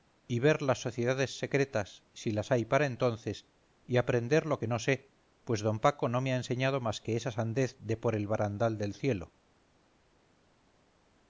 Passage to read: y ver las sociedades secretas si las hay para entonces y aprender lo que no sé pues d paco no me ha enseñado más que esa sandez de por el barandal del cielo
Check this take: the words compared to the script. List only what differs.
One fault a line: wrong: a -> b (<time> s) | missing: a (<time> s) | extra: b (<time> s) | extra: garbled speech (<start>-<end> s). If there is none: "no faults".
no faults